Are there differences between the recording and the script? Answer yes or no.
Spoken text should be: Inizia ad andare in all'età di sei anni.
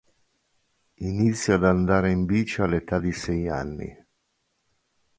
yes